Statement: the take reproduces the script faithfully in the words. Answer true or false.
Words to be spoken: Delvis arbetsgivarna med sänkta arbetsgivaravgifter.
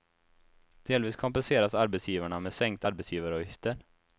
false